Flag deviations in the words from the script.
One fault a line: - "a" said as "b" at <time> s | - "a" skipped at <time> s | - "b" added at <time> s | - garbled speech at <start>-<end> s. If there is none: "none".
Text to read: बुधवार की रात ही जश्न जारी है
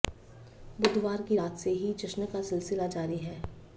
- "से" added at 1.6 s
- "का सिलसिला" added at 2.3 s